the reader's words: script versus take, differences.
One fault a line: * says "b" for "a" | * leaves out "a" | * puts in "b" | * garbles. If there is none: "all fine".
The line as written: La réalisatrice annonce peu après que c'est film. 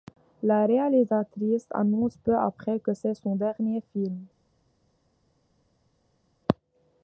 * puts in "son dernier"